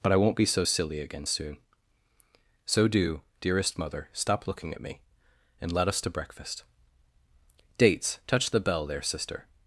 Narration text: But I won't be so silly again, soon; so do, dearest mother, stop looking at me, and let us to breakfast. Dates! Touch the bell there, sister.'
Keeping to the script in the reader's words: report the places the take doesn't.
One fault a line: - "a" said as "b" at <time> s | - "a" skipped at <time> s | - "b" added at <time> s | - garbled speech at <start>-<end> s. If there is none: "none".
none